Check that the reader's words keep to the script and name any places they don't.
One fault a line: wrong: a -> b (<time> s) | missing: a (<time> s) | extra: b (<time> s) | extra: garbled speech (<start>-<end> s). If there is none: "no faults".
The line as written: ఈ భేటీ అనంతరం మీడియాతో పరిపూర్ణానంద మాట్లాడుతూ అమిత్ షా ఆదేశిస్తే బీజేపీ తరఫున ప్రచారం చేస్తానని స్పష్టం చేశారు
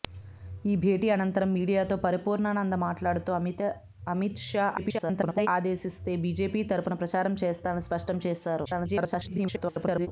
extra: garbled speech (4.8-5.5 s)
extra: garbled speech (8.7-10.1 s)